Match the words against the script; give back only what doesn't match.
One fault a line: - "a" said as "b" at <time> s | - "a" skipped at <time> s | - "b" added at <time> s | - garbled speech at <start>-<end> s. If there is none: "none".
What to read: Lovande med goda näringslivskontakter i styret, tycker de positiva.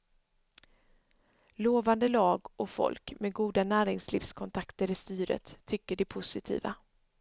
- "lag och folk" added at 2.0 s